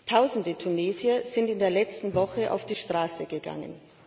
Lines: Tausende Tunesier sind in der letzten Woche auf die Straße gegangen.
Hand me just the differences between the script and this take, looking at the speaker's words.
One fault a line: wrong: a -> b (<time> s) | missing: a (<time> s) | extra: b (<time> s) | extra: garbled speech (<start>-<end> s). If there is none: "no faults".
no faults